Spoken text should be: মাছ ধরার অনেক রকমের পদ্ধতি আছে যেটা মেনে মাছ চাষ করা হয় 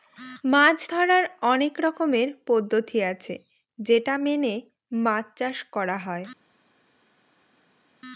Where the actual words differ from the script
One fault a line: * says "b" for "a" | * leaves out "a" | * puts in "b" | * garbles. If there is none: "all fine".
all fine